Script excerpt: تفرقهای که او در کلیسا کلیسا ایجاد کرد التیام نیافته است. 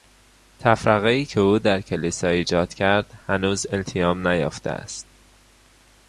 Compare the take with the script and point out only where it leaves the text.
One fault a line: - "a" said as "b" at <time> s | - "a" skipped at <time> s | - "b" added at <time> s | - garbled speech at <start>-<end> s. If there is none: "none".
- "کلیسا" skipped at 2.3 s
- "هنوز" added at 3.3 s